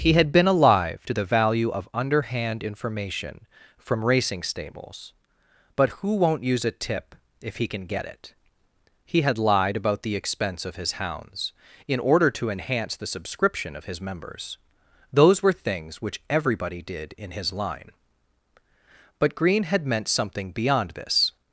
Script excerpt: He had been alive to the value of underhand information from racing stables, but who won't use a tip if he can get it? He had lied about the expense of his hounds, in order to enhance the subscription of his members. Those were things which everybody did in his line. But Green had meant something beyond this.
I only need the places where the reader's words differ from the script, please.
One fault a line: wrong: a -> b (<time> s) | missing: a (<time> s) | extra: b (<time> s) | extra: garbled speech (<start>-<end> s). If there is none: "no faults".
no faults